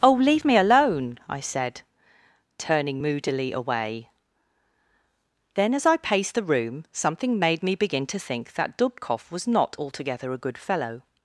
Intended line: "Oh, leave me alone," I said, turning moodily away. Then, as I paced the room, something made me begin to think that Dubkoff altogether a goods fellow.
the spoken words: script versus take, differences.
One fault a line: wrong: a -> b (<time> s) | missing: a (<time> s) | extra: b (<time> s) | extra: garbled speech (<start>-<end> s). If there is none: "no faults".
extra: was not (9.3 s)
wrong: goods -> good (10.4 s)